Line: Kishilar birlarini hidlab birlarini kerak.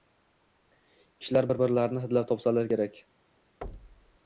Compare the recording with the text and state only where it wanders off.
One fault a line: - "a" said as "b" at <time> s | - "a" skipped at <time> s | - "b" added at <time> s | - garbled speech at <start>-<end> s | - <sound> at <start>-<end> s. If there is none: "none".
- "bir" added at 1.5 s
- "birlarini" said as "topsalar" at 2.3 s
- thud at 3.6-4.2 s